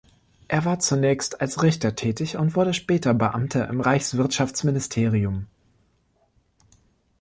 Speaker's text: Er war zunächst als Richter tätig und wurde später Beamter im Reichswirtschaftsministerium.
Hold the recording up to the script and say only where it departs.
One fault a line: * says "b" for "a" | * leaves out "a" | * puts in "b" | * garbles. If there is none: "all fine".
all fine